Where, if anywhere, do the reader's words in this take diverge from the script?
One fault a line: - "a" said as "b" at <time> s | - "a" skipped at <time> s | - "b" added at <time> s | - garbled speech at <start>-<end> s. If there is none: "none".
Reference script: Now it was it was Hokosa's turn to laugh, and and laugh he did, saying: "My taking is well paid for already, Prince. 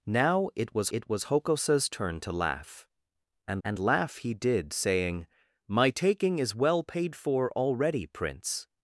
none